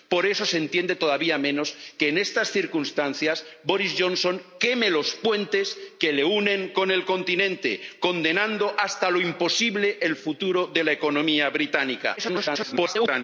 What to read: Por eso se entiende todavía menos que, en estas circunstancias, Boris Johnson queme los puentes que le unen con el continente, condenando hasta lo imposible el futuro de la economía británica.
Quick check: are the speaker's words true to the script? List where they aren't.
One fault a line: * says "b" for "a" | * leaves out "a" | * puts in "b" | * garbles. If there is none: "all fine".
* garbles